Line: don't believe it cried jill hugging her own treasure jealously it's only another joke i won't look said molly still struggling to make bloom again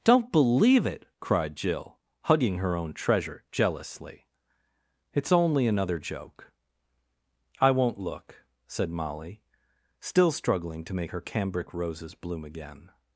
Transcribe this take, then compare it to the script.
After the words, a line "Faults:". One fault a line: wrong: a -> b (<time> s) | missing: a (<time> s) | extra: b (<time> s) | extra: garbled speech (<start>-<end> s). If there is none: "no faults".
don't believe it cried jill hugging her own treasure jealously it's only another joke i won't look said molly still struggling to make her cambric roses bloom again
Faults:
extra: her cambric roses (11.1 s)